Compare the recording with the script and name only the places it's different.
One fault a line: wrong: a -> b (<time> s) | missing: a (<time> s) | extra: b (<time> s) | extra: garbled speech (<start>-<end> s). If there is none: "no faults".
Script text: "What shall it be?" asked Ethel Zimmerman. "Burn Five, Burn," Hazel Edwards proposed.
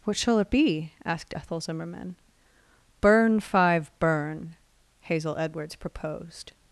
no faults